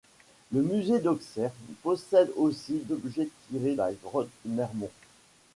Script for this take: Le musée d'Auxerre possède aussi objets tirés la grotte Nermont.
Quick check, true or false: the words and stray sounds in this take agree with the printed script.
true